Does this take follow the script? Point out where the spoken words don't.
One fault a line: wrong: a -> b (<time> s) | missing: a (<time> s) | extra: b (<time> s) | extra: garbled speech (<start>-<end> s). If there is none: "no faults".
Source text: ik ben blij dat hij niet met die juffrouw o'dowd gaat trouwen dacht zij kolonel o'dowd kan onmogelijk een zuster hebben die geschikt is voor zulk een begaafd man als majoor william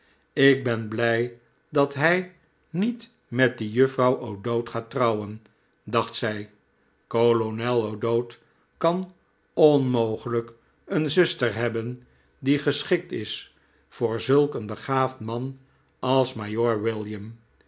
no faults